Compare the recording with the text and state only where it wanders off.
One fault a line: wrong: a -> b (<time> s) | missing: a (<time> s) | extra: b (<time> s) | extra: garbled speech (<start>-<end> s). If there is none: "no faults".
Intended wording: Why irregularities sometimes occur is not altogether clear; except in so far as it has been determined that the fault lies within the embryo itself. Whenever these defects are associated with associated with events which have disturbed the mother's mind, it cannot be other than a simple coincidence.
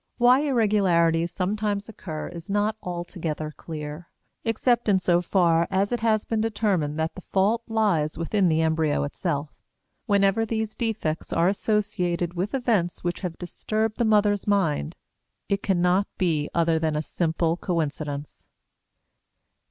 missing: associated with (12.6 s)